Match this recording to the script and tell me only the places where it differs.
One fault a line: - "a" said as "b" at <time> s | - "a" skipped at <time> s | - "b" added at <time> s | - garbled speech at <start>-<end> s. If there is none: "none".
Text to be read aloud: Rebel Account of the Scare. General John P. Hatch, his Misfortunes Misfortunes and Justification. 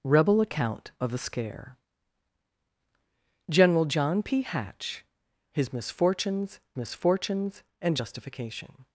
none